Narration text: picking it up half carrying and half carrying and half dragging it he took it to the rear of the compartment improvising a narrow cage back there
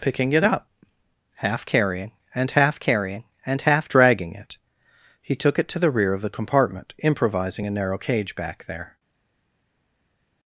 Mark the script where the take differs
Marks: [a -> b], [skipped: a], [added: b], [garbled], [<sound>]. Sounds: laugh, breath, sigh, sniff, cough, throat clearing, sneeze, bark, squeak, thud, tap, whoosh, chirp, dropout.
picking it up half carrying and half carrying and half dragging it he took it to the rear of the compartment improvising a narrow cage back there